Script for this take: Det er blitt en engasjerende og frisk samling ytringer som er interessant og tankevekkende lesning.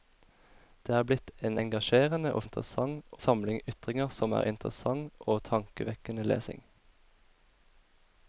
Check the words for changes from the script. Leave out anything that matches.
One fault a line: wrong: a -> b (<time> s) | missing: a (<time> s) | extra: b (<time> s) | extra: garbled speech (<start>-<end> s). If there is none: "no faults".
wrong: frisk -> interessant (2.5 s)